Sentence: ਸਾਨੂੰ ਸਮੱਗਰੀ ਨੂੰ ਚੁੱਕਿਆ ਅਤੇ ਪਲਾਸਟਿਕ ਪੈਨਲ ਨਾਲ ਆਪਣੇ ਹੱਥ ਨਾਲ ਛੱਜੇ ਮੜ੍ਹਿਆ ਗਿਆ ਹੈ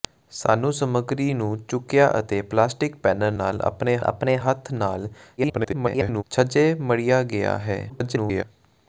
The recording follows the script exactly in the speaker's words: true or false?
false